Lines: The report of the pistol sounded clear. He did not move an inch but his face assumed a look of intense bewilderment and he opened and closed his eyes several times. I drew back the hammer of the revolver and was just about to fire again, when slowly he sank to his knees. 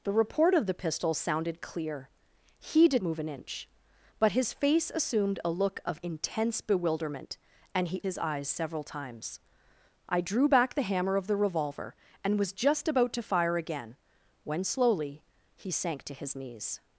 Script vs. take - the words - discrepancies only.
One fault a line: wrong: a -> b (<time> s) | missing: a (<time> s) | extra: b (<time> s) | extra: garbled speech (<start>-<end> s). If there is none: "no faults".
missing: not (3.0 s)
missing: opened and closed (8.0 s)